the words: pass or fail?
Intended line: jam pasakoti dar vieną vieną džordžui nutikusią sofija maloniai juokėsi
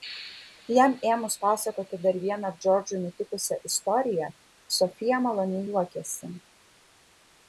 fail